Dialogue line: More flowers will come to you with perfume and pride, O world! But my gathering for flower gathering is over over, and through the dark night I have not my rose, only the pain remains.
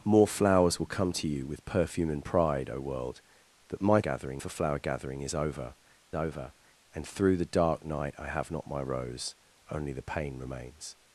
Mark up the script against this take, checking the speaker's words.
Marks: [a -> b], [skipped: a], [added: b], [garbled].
More flowers will come to you with perfume and pride, O world! But my gathering for flower gathering is over over, and through the dark night I have not my rose, only the pain remains.